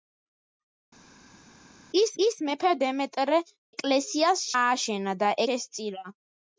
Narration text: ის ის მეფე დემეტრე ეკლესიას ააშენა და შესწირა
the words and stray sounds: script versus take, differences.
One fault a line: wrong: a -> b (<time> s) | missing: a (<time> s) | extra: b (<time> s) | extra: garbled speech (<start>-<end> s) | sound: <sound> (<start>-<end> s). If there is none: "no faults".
no faults